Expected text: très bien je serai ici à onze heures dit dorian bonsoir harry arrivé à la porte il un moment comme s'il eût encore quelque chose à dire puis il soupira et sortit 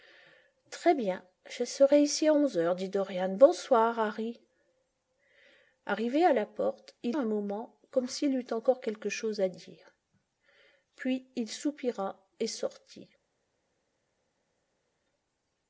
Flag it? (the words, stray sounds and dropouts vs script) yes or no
no